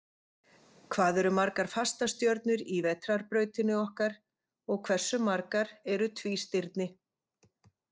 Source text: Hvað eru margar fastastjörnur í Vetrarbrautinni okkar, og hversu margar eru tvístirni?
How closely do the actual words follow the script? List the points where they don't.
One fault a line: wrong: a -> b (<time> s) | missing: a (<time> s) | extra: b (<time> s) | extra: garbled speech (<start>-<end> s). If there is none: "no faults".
no faults